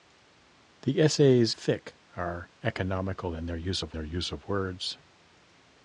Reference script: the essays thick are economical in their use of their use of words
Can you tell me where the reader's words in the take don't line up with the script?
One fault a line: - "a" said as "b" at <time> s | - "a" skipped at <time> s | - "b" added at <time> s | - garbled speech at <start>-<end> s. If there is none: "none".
none